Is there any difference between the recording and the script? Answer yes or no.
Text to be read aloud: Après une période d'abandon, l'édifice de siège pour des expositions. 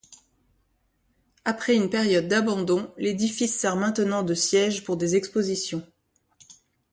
yes